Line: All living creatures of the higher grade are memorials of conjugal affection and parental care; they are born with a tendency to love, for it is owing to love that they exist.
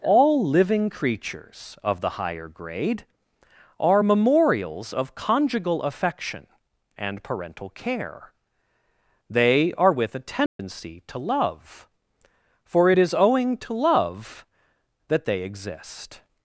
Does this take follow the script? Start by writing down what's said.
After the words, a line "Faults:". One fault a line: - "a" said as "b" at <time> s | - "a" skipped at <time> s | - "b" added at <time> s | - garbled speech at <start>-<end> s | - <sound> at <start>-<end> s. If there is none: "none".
All living creatures of the higher grade are memorials of conjugal affection and parental care; they are with a tendency to love, for it is owing to love that they exist.
Faults:
- "born" skipped at 9.9 s
- dropout at 10.5-10.6 s